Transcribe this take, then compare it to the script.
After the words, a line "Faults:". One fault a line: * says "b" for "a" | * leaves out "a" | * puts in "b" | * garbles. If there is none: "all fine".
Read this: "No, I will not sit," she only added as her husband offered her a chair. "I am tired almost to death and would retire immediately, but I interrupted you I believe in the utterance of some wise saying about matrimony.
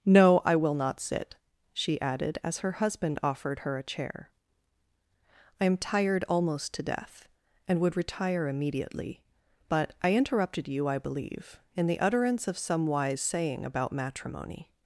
"No, I will not sit," she added as her husband offered her a chair. "I am tired almost to death and would retire immediately, but I interrupted you I believe in the utterance of some wise saying about matrimony.
Faults:
* leaves out "only"